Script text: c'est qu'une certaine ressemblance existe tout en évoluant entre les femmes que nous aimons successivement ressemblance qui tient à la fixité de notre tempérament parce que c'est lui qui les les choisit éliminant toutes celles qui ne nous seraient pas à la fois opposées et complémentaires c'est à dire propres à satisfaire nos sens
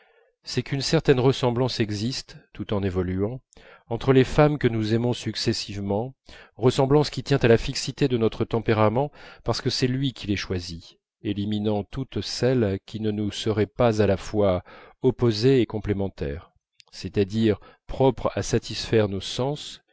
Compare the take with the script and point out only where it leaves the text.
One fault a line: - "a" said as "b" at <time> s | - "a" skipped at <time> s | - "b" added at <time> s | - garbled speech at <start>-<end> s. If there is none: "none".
- "les" skipped at 10.4 s